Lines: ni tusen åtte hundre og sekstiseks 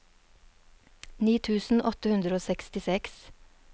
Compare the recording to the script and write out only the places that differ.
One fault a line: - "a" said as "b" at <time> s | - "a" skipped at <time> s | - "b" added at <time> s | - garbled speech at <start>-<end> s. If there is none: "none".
none